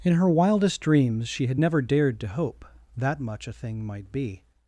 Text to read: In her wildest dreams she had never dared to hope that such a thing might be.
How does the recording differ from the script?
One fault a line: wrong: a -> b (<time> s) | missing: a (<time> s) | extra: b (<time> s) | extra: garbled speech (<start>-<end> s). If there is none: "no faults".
wrong: such -> much (3.2 s)